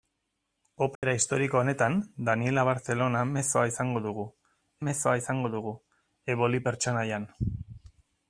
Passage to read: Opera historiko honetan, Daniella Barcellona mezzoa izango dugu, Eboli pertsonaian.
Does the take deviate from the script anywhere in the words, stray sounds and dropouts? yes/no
yes